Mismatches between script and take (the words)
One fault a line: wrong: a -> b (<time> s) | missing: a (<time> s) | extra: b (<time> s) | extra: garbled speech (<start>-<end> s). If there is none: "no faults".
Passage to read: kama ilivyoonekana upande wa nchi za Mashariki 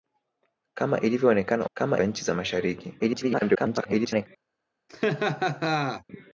wrong: upande -> kama (1.7 s)
extra: garbled speech (3.0-4.3 s)